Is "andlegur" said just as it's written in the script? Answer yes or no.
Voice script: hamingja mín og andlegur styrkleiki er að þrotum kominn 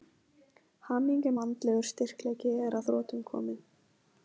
yes